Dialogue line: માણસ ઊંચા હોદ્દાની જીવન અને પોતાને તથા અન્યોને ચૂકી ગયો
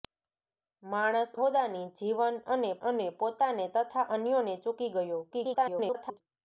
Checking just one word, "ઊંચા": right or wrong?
wrong